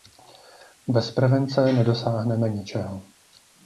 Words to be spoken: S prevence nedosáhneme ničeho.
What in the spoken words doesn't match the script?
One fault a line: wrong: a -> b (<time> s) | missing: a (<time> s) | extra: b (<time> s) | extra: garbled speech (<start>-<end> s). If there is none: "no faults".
wrong: S -> Bez (0.9 s)